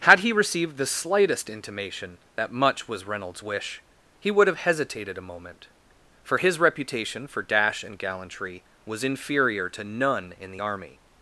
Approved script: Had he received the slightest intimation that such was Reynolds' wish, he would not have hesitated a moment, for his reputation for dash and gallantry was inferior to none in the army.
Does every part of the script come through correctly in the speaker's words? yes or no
no